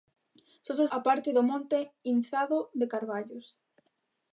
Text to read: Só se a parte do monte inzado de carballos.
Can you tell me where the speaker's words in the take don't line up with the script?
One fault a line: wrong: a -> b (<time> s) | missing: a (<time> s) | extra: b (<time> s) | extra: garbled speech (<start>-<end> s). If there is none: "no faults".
no faults